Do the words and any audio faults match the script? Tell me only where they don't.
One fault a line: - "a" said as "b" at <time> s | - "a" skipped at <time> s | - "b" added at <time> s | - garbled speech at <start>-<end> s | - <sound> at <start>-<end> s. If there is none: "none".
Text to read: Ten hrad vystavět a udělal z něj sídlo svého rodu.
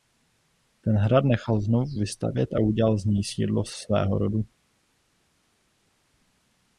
- "nechal znovu" added at 1.2 s